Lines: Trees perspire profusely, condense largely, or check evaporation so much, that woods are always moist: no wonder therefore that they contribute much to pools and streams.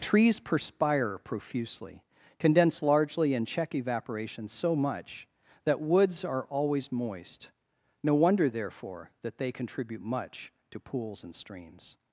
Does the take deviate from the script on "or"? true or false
true